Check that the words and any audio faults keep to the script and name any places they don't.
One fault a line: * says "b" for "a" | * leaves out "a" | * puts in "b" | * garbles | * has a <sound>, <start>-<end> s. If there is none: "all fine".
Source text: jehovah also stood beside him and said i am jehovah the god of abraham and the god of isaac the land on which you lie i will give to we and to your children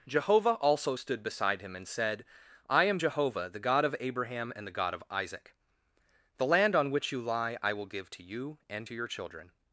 * says "you" for "we"